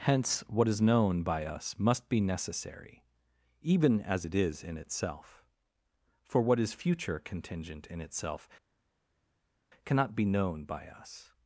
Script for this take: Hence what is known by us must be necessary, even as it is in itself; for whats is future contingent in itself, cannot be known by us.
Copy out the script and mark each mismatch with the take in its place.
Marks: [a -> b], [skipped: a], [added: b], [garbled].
Hence what is known by us must be necessary, even as it is in itself; for [whats -> what] is future contingent in itself, cannot be known by us.